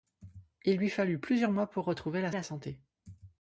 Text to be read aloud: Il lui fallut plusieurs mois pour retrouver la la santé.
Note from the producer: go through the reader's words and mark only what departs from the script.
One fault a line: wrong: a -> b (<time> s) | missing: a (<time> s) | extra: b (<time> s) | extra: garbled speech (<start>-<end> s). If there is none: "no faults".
no faults